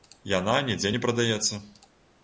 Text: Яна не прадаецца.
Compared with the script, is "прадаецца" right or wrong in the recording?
right